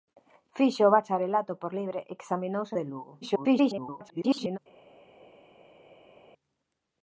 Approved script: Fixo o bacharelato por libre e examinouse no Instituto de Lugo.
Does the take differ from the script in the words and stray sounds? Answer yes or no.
yes